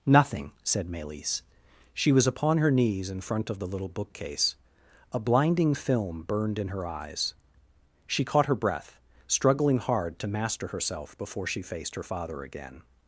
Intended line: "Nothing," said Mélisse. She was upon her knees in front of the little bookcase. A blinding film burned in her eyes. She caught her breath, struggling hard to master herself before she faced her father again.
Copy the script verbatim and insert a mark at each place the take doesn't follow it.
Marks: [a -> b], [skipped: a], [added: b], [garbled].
"Nothing," said Mélisse. She was upon her knees in front of the little bookcase. A blinding film burned in her eyes. She caught her breath, struggling hard to master herself before she faced her father again.